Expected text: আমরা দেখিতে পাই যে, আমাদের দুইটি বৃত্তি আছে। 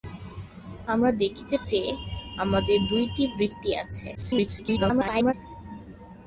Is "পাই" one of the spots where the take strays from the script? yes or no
yes